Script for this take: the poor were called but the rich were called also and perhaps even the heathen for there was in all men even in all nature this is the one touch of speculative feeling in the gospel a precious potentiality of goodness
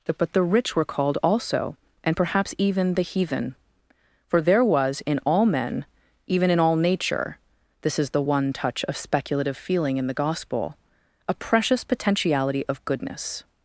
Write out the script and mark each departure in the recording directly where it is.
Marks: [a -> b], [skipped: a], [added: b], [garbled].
the [skipped: poor were called] but the rich were called also and perhaps even the heathen for there was in all men even in all nature this is the one touch of speculative feeling in the gospel a precious potentiality of goodness